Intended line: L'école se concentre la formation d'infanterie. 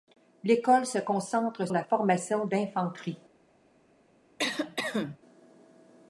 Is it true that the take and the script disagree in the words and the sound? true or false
true